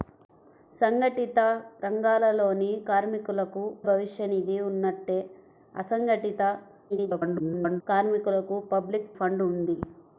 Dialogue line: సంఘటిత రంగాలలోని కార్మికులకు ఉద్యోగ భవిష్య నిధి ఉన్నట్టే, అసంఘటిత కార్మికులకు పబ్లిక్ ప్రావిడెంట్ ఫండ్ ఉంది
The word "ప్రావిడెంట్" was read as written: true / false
false